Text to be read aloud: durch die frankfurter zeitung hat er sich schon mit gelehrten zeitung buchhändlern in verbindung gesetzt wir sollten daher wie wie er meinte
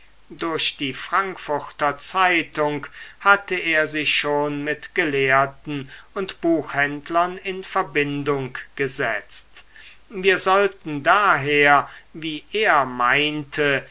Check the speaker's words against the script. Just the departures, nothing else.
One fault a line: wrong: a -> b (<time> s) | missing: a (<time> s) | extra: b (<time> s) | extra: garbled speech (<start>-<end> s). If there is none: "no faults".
wrong: hat -> hatte (3.2 s)
wrong: zeitung -> und (6.2 s)
missing: wie (12.5 s)